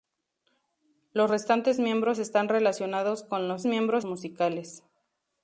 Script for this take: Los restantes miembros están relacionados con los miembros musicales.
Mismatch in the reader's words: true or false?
false